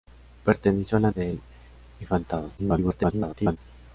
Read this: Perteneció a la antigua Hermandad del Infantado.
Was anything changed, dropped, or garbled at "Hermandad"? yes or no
yes